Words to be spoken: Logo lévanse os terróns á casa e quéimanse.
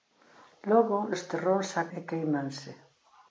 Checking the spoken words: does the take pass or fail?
fail